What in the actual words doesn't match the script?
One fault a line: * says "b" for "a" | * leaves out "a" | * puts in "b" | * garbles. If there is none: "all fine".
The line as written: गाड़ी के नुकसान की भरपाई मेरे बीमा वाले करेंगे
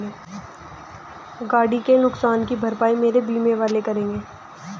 all fine